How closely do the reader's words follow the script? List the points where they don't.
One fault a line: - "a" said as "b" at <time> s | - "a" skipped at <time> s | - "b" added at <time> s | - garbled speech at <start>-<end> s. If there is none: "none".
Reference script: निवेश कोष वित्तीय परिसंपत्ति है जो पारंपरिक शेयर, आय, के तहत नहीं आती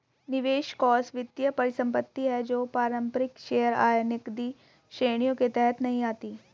- "नकदी श्रेणियों" added at 4.0 s